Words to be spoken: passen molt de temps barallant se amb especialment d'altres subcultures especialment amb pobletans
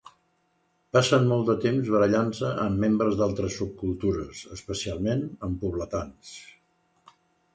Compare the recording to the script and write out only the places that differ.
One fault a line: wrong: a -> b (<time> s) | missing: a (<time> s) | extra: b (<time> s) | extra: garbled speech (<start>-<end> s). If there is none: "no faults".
wrong: especialment -> membres (2.9 s)